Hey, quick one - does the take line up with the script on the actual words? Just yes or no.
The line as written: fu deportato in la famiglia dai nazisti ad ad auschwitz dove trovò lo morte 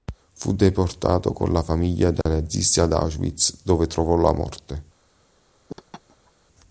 no